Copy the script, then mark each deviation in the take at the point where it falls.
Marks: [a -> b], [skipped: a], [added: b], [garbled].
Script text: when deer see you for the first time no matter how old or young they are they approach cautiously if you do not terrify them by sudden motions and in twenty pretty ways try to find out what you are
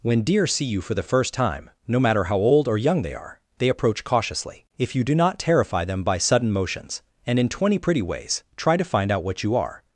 when deer see you for the first time no matter how old or young they are they approach cautiously if you do not terrify them by sudden motions and in twenty pretty ways try to find out what you are